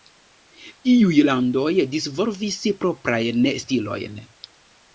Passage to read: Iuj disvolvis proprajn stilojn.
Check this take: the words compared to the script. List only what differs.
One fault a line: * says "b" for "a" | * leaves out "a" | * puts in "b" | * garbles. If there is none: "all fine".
* puts in "landoj"